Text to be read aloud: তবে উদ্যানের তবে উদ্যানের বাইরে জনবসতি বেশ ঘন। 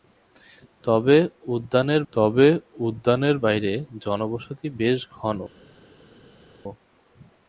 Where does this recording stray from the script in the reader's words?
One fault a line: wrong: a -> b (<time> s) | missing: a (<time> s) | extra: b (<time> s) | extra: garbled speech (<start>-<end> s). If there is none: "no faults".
no faults